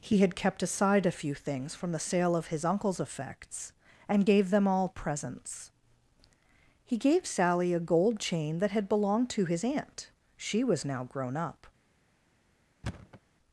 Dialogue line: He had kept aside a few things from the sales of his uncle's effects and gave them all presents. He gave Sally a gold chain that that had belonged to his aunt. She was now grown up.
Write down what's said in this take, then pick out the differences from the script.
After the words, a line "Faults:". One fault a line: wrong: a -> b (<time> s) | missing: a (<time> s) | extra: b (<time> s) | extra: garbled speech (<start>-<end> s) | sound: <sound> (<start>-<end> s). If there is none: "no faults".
He had kept aside a few things from the sale of his uncle's effects and gave them all presents. He gave Sally a gold chain that had belonged to his aunt. She was now grown up.
Faults:
wrong: sales -> sale (2.0 s)
missing: that (8.7 s)
sound: thud (12.8-13.2 s)